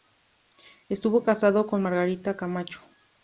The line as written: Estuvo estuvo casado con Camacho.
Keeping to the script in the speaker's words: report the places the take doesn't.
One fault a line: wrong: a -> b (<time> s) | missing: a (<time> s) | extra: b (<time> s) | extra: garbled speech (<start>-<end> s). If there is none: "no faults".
missing: estuvo (1.2 s)
extra: Margarita (1.8 s)